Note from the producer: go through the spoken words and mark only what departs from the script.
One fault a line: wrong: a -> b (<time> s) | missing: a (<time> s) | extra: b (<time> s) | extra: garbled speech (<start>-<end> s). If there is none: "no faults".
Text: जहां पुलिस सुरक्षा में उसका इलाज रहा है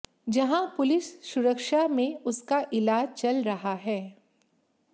extra: चल (3.1 s)